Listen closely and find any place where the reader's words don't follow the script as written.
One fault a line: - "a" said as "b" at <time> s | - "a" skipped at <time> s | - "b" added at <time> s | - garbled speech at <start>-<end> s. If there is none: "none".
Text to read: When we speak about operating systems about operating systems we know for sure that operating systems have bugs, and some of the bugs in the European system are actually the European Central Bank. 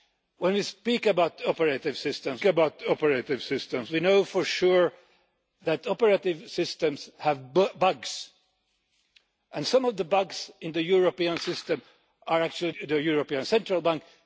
none